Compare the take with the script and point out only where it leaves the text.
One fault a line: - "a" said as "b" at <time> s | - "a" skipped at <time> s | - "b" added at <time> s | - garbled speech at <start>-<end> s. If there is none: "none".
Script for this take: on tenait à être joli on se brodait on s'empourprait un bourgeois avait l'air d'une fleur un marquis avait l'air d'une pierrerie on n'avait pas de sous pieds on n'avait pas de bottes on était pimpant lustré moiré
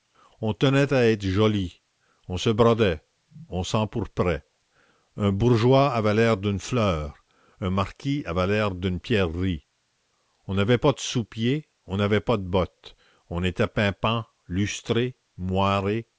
none